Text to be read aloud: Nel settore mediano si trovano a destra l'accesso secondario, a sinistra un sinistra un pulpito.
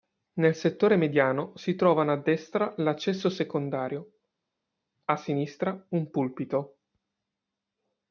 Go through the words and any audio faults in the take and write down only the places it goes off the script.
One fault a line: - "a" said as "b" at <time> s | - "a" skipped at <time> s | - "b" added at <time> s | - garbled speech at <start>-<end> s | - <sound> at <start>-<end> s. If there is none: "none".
- "sinistra un" skipped at 6.1 s